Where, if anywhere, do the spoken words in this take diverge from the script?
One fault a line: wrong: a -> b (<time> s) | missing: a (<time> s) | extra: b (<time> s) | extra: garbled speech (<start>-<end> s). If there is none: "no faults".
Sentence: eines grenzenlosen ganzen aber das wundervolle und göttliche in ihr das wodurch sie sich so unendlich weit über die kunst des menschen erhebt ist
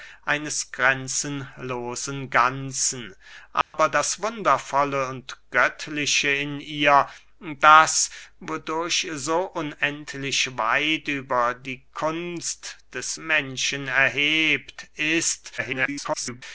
missing: sie sich (9.1 s)
extra: garbled speech (15.6-16.4 s)